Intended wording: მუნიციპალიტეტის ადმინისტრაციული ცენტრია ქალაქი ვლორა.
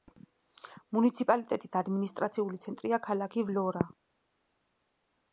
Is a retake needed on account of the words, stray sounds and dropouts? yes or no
no